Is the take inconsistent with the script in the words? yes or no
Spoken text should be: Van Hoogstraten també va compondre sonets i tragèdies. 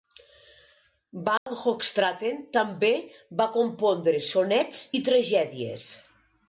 no